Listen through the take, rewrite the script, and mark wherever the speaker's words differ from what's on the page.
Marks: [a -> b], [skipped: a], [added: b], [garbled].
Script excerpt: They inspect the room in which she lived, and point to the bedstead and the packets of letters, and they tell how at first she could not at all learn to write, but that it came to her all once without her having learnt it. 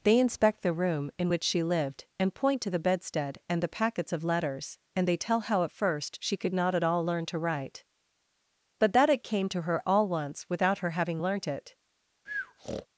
They inspect the room in which she lived, and point to the bedstead and the packets of letters, and they tell how at first she could not at all learn to write, but that it came to her all once without her having learnt it.